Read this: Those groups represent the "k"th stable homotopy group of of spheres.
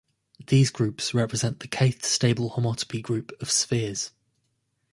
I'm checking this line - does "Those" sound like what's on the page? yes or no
no